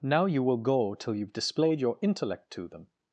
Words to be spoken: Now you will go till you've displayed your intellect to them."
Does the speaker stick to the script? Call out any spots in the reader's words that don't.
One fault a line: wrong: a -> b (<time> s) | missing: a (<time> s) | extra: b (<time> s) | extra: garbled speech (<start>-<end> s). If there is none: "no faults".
no faults